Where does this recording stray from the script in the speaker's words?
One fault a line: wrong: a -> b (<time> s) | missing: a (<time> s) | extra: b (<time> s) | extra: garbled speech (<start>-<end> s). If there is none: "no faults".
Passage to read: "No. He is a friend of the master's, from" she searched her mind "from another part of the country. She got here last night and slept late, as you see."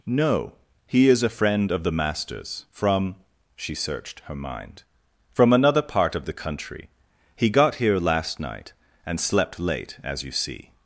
wrong: She -> He (7.3 s)